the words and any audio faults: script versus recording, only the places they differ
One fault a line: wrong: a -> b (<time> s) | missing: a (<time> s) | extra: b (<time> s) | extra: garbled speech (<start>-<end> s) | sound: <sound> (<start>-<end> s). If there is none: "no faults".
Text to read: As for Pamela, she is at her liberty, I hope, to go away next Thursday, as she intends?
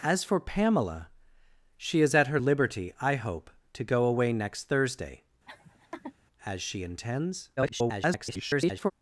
sound: laugh (5.5-6.1 s)
extra: garbled speech (7.6-8.9 s)